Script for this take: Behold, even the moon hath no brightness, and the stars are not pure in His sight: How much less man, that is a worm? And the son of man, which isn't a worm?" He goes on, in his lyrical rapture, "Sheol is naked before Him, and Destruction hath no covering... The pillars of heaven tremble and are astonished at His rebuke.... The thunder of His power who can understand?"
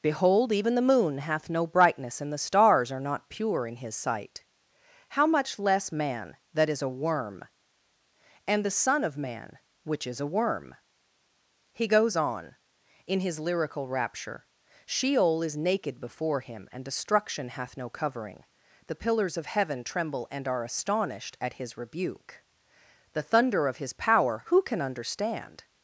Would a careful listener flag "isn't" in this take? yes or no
yes